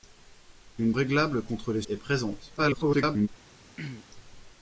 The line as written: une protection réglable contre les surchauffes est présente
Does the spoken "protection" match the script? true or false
false